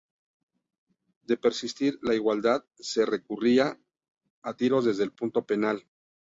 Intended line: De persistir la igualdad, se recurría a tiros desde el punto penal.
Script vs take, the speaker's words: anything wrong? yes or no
no